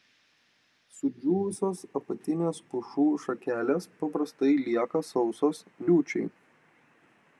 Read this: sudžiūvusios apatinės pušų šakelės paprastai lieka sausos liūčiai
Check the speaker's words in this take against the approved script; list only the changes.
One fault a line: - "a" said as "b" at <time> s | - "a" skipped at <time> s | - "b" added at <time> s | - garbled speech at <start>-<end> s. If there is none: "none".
none